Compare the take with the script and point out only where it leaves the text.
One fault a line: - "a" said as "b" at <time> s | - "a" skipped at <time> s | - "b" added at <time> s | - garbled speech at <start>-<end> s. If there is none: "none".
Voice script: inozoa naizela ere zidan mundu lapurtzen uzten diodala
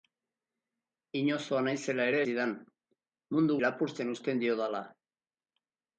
none